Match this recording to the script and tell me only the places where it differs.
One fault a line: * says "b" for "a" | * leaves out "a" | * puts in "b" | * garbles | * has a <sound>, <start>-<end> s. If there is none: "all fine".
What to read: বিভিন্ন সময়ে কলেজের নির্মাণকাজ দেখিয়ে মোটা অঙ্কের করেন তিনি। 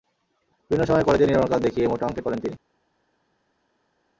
all fine